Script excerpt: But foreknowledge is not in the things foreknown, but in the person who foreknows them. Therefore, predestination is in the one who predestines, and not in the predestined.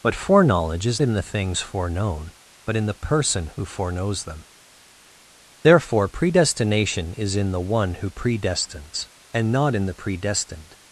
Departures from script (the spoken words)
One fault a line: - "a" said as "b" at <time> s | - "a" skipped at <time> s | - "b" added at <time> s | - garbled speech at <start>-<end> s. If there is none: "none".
- "not" skipped at 1.0 s